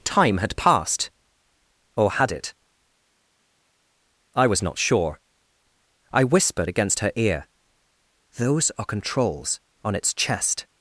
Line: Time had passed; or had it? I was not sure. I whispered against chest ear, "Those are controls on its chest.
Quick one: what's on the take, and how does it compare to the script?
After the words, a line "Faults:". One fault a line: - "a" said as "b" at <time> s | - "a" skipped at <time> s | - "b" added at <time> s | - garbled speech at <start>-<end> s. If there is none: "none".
Time had passed; or had it? I was not sure. I whispered against her ear, "Those are controls on its chest.
Faults:
- "chest" said as "her" at 7.0 s